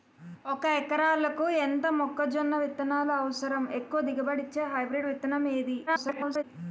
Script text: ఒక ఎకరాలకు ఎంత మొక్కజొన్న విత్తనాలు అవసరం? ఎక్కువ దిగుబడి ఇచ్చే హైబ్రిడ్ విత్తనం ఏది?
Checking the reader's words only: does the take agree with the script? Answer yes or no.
no